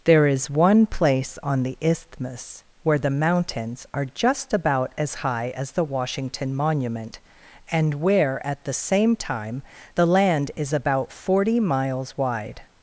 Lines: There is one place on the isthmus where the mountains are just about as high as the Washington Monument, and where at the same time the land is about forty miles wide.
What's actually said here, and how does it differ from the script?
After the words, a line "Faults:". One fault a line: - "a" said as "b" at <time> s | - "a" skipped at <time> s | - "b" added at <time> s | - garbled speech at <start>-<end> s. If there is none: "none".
There is one place on the isthmus where the mountains are just about as high as the Washington Monument, and where at the same time the land is about forty miles wide.
Faults:
none